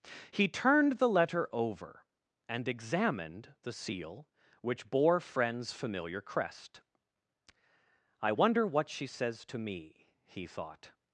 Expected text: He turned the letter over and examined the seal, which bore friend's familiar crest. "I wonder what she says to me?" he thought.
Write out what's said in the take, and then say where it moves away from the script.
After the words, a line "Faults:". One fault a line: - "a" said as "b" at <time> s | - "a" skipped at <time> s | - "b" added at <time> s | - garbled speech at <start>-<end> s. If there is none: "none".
He turned the letter over and examined the seal, which bore friend's familiar crest. "I wonder what she says to me?" he thought.
Faults:
none